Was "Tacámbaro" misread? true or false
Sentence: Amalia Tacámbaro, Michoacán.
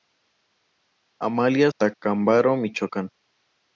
false